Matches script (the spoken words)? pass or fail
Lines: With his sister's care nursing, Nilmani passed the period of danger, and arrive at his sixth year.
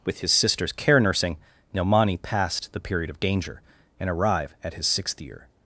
pass